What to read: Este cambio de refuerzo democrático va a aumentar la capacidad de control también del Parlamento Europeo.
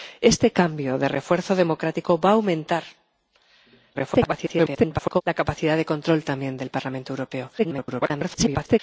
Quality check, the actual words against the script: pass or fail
fail